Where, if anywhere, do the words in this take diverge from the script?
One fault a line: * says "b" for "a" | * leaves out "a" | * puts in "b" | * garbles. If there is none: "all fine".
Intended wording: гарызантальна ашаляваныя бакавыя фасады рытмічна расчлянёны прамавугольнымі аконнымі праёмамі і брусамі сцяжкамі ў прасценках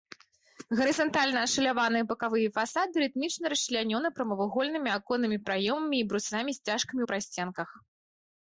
all fine